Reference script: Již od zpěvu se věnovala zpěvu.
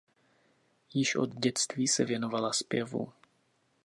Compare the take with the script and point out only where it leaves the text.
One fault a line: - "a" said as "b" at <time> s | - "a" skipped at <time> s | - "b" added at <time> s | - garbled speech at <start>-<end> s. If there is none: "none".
- "zpěvu" said as "dětství" at 1.3 s